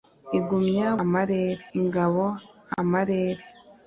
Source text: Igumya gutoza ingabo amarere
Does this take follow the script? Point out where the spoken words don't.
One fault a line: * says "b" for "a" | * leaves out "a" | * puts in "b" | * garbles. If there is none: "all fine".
* says "amarere" for "gutoza"